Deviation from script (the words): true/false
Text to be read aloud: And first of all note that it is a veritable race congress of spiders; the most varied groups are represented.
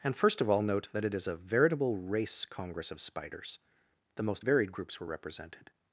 true